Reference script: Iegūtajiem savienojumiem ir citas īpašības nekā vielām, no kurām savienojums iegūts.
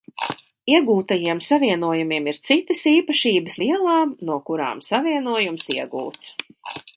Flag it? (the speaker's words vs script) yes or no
yes